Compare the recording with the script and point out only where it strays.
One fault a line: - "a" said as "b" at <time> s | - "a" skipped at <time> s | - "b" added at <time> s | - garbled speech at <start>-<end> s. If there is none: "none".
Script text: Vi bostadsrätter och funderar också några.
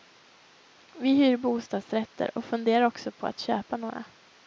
- "hyr" added at 1.1 s
- "på att köpa" added at 3.1 s